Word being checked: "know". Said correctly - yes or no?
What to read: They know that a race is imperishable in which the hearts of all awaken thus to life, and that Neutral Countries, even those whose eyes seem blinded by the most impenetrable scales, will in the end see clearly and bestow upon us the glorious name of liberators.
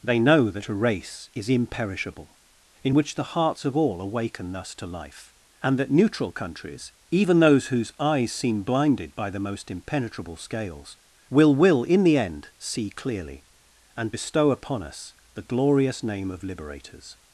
yes